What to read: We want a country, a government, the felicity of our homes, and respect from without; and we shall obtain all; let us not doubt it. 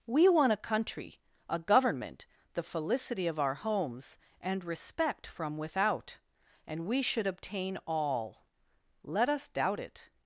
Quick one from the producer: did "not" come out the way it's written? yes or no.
no